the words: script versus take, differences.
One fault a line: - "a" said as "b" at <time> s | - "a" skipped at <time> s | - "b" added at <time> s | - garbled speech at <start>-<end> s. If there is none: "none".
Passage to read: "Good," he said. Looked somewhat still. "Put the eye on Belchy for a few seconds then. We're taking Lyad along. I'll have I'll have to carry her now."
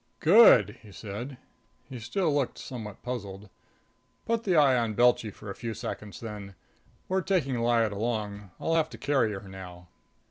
- "He still" added at 1.9 s
- "still" said as "puzzled" at 3.0 s
- "I'll have" skipped at 8.9 s